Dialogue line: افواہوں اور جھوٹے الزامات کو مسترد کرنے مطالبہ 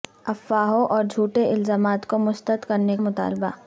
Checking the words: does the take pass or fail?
pass